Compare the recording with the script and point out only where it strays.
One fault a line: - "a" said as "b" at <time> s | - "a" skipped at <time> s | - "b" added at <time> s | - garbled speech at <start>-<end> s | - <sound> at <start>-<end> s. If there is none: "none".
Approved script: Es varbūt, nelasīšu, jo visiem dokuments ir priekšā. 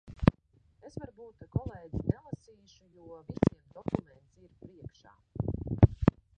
- "kolēģi" added at 1.6 s